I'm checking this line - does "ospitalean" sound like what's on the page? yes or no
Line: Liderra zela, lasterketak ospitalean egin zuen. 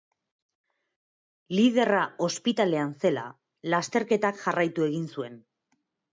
no